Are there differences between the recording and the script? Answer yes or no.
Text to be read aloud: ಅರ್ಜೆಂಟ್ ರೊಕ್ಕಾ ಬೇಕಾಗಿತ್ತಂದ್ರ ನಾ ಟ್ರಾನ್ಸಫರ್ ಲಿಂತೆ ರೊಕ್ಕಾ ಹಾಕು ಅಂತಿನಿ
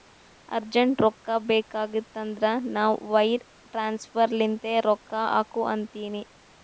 yes